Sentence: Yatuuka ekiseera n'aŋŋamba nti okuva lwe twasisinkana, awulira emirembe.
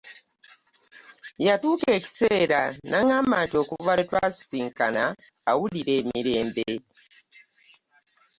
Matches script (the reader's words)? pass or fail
pass